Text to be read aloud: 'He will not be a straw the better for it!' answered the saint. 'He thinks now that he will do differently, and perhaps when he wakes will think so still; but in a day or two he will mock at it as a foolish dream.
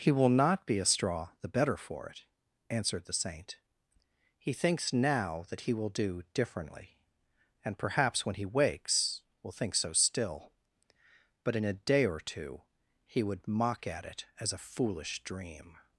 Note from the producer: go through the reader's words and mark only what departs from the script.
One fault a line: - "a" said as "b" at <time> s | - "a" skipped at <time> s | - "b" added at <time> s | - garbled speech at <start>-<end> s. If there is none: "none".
- "will" said as "would" at 13.2 s